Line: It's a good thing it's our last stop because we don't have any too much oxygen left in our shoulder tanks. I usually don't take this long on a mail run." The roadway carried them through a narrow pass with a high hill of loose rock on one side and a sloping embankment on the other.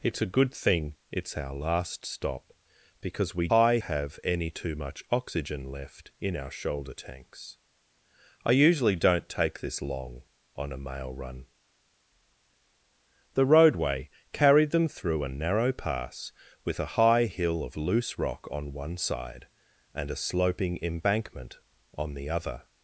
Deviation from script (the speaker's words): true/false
true